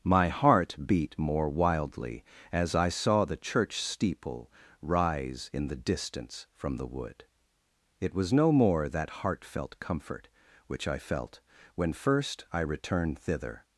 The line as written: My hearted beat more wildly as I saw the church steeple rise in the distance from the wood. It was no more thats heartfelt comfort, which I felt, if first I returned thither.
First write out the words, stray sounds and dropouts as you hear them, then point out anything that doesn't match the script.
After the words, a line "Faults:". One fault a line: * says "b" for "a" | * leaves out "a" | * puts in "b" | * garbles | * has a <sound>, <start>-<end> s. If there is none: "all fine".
My heart beat more wildly as I saw the church steeple rise in the distance from the wood. It was no more that heartfelt comfort, which I felt, when first I returned thither.
Faults:
* says "heart" for "hearted"
* says "that" for "thats"
* says "when" for "if"